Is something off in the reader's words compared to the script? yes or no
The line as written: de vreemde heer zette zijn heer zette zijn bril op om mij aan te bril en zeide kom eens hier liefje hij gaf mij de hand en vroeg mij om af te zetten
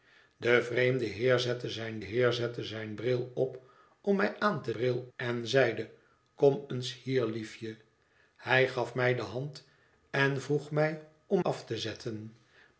no